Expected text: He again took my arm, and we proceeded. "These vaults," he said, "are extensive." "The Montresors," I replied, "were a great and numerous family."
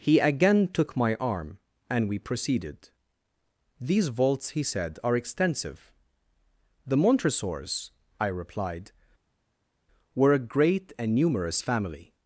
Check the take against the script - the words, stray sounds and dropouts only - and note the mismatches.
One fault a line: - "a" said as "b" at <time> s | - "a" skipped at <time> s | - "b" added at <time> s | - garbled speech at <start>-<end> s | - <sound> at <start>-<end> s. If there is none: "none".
none